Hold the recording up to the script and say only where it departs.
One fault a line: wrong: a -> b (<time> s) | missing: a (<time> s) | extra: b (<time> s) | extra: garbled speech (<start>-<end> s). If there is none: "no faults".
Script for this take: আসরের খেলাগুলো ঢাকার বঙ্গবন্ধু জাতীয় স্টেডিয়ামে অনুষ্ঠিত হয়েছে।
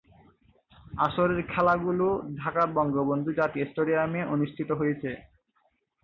no faults